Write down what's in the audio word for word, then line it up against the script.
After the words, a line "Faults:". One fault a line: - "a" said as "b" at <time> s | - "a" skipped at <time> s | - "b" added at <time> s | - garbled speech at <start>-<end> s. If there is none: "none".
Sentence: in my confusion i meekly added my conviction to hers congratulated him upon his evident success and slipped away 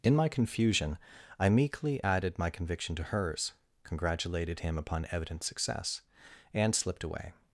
in my confusion i meekly added my conviction to hers congratulated him upon evident success and slipped away
Faults:
- "his" skipped at 5.1 s